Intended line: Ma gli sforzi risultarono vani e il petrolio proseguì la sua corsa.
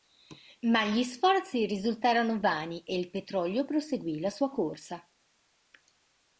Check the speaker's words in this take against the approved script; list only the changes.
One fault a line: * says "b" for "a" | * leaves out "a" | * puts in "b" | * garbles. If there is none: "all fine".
all fine